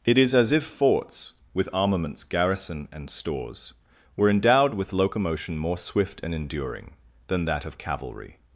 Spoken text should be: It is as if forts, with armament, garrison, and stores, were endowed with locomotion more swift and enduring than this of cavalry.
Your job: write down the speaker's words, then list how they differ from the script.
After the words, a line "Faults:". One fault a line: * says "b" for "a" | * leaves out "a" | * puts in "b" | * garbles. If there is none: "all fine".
It is as if forts, with armaments, garrison, and stores, were endowed with locomotion more swift and enduring than that of cavalry.
Faults:
* says "armaments" for "armament"
* says "that" for "this"